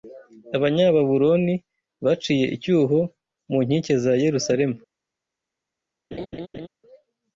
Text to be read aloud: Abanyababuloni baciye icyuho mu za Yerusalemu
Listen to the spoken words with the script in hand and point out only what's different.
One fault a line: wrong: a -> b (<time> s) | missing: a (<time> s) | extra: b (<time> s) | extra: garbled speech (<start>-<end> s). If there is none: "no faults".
extra: nkike (3.6 s)